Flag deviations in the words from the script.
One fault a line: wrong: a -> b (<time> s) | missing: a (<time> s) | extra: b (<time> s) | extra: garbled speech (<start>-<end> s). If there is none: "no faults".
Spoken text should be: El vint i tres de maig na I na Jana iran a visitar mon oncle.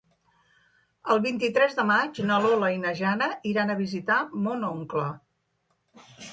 extra: Lola (2.5 s)